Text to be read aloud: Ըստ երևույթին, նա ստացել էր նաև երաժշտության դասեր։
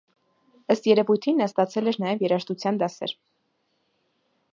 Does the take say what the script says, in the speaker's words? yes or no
yes